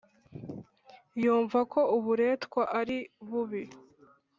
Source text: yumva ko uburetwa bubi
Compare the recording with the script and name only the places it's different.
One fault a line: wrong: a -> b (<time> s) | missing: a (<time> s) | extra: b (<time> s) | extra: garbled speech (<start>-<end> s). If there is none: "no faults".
extra: ari (2.8 s)